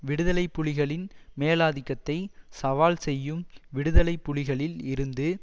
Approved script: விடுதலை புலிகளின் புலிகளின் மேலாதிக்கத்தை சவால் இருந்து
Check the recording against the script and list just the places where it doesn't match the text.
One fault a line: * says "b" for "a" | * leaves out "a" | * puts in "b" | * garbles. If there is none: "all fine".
* leaves out "புலிகளின்"
* puts in "செய்யும் விடுதலை புலிகளில்"